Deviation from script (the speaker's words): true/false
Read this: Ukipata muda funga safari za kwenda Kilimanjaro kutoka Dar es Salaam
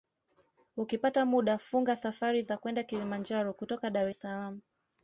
false